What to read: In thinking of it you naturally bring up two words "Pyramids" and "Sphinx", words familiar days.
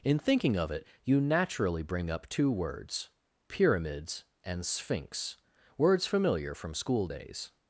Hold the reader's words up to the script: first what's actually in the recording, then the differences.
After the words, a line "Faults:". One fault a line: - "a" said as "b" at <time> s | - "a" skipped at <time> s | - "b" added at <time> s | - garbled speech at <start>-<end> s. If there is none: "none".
In thinking of it you naturally bring up two words "Pyramids" and "Sphinx", words familiar from school days.
Faults:
- "from school" added at 6.5 s